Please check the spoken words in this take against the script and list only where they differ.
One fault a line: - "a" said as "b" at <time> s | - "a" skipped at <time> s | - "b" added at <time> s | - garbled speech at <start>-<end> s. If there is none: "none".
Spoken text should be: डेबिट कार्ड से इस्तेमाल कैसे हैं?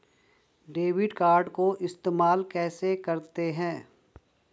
- "से" said as "को" at 1.5 s
- "करते" added at 2.9 s